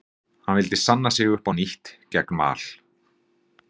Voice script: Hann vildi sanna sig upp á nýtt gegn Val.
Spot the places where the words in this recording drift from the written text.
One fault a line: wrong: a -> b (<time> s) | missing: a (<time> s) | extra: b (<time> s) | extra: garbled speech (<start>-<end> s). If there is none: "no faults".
no faults